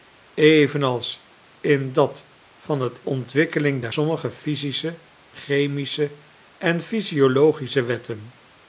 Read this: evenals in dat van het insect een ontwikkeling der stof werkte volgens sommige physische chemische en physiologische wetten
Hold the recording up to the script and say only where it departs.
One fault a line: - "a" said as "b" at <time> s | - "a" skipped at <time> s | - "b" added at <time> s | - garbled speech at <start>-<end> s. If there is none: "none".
- "insect een" skipped at 3.0 s
- "stof werkte volgens" skipped at 3.9 s